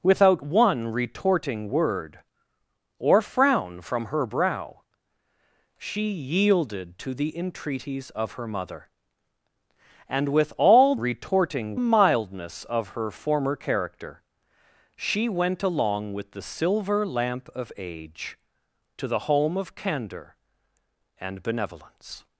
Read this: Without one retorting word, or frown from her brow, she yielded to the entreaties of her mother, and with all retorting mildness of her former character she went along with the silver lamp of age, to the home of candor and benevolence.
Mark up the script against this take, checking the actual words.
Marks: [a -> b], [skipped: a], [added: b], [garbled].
Without one retorting word, or frown from her brow, she yielded to the entreaties of her mother, and with all retorting mildness of her former character she went along with the silver lamp of age, to the home of candor and benevolence.